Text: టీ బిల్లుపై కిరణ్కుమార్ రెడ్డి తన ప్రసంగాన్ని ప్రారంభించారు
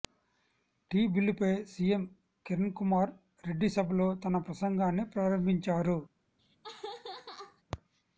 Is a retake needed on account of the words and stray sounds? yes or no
yes